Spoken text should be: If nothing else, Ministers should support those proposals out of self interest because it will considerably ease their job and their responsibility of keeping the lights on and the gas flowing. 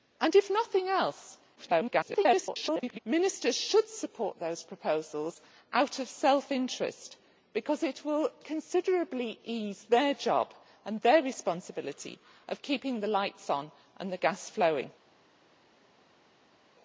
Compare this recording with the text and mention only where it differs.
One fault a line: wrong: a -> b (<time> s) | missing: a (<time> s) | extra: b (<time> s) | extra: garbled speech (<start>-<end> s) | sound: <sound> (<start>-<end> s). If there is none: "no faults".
extra: garbled speech (1.6-3.0 s)